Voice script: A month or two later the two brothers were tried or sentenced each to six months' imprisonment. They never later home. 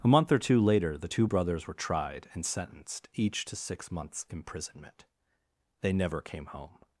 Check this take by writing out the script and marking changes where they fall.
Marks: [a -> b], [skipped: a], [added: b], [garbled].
A month or two later the two brothers were tried [or -> and] sentenced each to six months' imprisonment. They never [later -> came] home.